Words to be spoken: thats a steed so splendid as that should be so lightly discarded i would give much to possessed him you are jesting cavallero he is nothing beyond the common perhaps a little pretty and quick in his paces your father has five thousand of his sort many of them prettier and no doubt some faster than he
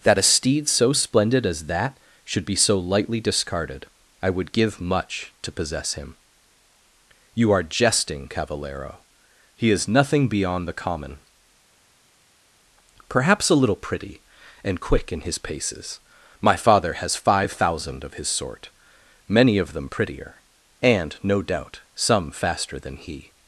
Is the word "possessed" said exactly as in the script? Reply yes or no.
no